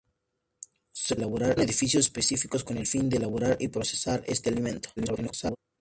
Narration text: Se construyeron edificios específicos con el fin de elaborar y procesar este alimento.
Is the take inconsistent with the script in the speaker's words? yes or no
yes